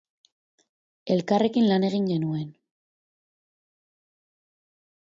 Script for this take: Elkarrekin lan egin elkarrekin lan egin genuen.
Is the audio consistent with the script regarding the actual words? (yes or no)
no